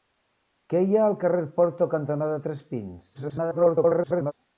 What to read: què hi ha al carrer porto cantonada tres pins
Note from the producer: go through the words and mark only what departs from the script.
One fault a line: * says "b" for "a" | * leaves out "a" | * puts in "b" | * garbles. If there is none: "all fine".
* garbles